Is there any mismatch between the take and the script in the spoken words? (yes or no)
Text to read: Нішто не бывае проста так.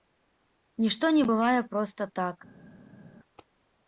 no